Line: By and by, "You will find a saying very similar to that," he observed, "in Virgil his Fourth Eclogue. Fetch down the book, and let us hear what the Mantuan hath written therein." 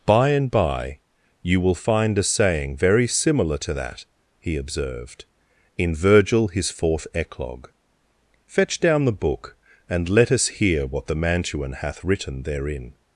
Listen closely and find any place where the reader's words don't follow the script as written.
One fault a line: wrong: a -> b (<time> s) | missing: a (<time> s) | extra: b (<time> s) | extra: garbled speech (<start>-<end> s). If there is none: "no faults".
no faults